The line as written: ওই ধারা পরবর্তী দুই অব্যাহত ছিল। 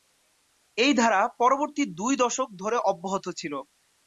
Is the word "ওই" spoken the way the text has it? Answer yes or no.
no